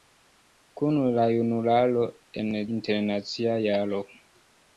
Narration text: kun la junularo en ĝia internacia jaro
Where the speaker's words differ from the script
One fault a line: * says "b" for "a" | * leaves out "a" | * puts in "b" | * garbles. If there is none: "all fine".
* leaves out "ĝia"